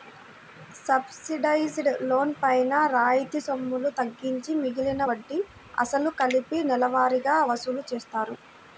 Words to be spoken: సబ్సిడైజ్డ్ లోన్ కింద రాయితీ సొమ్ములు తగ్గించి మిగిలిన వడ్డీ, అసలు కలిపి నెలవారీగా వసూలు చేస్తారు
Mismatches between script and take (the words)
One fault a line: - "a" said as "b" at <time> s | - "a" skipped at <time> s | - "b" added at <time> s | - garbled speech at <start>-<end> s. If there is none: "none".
- "కింద" said as "పైన" at 2.4 s